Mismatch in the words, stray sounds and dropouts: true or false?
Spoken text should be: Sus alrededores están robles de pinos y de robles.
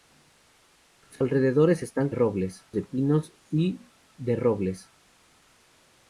false